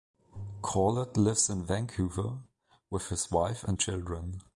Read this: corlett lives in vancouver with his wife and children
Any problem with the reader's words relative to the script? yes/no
no